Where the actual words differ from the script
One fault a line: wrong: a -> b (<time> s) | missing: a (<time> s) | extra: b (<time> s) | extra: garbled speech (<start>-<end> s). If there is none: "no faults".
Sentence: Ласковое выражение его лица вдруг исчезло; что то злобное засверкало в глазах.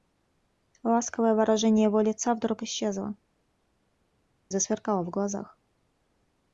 missing: что то злобное (3.1 s)